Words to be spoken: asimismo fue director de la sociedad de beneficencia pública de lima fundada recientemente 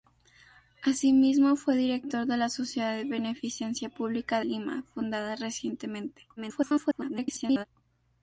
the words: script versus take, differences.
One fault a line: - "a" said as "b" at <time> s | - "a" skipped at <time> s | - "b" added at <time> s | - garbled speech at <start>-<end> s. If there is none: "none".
- "de" skipped at 4.4 s
- garbled speech at 6.4-7.6 s